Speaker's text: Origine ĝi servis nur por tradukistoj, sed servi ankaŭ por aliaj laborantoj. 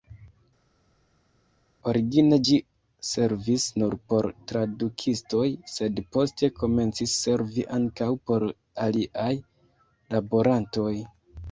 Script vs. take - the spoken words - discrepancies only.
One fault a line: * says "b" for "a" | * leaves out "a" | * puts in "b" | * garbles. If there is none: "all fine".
* puts in "poste komencis"